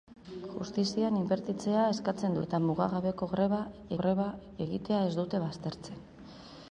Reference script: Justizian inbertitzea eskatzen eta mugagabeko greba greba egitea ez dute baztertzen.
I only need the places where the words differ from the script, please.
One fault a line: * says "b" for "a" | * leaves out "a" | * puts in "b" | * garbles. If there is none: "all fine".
all fine